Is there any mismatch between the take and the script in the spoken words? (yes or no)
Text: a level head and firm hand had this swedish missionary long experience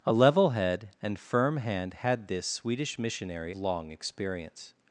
no